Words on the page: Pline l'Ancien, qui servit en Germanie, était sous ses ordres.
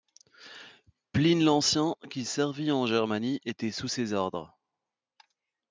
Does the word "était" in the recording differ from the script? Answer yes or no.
no